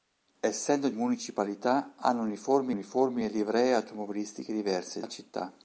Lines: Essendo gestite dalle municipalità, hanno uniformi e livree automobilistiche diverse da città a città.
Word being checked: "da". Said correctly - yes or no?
no